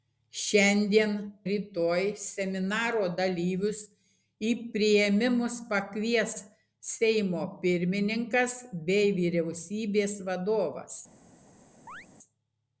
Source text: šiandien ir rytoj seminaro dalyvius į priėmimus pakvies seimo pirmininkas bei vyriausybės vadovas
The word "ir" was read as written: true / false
false